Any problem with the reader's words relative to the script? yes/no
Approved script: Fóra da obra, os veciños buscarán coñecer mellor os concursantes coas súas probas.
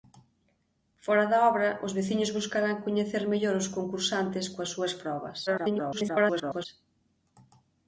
yes